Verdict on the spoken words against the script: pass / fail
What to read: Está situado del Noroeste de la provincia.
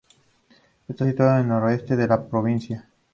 fail